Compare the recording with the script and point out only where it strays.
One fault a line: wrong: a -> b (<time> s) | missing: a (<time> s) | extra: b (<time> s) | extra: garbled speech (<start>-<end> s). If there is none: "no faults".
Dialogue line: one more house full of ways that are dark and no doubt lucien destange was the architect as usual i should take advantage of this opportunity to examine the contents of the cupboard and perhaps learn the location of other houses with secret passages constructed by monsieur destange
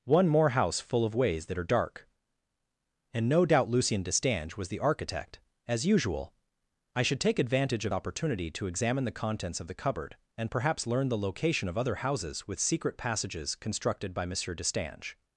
missing: this (7.9 s)